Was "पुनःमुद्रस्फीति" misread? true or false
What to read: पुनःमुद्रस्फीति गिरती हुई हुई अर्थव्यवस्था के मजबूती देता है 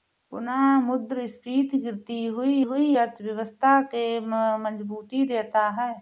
false